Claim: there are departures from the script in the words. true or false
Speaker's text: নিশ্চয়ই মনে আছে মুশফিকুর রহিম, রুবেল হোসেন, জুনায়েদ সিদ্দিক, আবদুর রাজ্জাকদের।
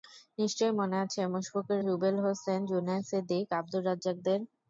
true